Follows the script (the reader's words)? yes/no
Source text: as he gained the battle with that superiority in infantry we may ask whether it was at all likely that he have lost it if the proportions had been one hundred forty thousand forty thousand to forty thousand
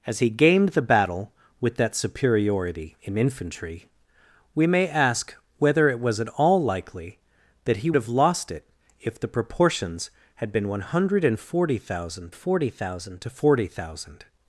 yes